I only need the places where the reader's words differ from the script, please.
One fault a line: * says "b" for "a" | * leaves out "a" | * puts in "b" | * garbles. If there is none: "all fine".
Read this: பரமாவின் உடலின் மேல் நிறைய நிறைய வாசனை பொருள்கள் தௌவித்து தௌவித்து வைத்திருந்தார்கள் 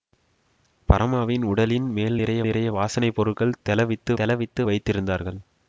all fine